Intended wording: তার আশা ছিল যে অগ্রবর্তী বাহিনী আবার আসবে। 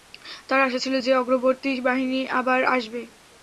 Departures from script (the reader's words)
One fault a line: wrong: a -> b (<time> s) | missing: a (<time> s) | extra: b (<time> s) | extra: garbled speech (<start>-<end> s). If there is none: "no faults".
no faults